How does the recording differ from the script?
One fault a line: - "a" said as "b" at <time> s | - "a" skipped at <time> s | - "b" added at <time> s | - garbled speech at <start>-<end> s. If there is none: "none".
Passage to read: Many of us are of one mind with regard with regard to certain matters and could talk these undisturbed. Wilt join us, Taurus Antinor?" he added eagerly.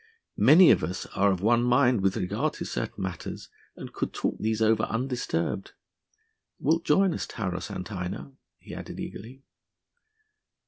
- "with regard" skipped at 2.5 s
- "over" added at 4.6 s